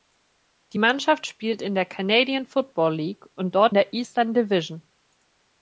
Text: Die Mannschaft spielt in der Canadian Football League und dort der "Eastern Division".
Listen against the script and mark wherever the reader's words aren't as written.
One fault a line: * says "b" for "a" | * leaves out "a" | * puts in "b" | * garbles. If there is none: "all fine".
all fine